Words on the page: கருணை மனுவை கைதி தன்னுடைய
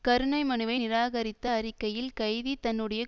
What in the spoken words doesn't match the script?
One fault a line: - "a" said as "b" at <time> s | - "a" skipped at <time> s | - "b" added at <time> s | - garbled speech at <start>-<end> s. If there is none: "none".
- "நிராகரித்த அறிக்கையில்" added at 0.7 s